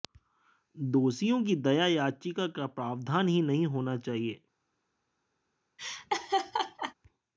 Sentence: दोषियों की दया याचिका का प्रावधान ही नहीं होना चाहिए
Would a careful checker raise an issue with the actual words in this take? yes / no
no